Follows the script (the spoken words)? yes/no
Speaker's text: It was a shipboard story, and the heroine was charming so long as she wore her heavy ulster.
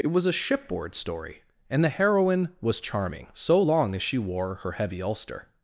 yes